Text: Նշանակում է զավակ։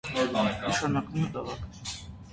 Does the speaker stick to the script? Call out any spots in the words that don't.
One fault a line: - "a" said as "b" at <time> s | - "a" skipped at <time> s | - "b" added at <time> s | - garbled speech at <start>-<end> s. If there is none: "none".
none